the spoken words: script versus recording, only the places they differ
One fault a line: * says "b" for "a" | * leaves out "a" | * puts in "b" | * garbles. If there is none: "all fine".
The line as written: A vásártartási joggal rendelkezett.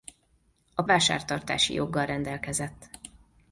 all fine